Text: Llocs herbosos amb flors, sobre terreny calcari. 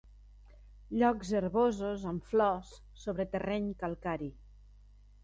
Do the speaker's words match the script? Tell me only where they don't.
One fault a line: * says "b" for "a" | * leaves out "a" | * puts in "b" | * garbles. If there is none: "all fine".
all fine